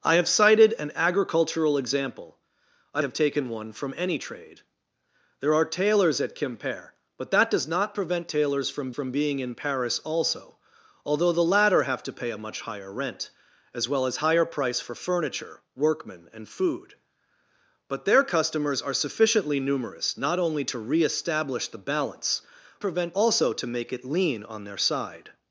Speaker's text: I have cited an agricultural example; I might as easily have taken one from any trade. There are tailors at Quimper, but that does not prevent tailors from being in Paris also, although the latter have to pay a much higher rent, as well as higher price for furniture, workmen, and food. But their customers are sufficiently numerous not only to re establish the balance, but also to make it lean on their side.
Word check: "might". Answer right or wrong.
wrong